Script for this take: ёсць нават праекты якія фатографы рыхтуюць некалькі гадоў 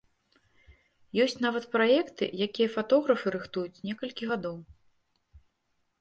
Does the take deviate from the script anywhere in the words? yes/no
no